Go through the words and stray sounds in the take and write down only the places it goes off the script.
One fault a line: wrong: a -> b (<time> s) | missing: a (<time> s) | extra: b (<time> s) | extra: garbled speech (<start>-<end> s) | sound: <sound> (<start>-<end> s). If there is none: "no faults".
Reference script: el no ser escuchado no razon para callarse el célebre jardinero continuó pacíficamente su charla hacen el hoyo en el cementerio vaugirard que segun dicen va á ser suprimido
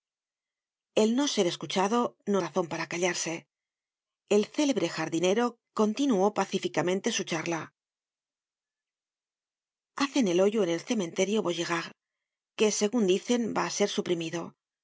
no faults